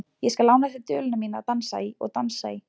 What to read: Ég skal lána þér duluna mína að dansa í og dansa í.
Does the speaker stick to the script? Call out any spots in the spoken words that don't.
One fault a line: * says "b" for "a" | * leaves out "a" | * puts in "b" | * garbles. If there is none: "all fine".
all fine